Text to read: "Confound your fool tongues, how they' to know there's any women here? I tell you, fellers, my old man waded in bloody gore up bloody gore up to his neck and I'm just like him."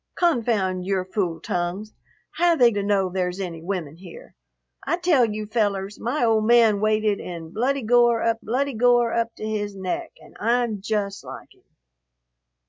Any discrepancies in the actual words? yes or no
no